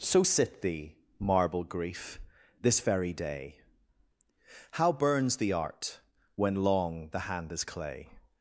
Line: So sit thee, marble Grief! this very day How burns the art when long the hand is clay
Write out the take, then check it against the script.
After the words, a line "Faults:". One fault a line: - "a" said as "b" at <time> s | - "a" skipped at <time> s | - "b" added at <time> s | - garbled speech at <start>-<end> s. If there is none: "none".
So sit thee, marble Grief! this very day How burns the art when long the hand is clay
Faults:
none